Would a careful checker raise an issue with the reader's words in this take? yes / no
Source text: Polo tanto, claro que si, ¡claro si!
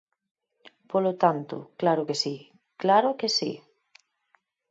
yes